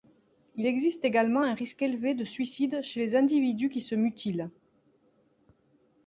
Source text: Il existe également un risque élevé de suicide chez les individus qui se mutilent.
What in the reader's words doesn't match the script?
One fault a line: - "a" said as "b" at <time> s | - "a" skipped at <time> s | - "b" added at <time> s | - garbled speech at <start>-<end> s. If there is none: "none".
none